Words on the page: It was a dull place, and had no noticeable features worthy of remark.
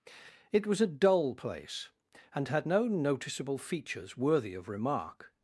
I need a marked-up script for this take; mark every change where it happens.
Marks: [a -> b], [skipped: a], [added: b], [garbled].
It was a dull place, and had no noticeable features worthy of remark.